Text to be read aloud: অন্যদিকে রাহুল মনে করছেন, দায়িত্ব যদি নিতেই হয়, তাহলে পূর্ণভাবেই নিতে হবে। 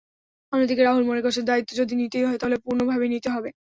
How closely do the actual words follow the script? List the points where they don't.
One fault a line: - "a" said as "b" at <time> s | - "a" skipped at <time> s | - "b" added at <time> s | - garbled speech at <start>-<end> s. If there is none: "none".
none